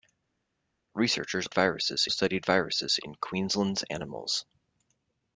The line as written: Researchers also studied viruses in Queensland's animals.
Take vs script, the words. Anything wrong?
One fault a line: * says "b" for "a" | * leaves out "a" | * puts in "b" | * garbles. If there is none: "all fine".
* says "viruses" for "also"